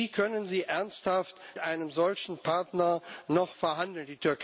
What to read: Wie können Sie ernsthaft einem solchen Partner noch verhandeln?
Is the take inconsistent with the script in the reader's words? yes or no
no